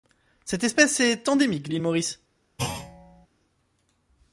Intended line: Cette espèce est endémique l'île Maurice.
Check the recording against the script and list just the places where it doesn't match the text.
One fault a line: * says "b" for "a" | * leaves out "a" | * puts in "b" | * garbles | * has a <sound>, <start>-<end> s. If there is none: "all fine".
* has a thud, 2.6-3.3 s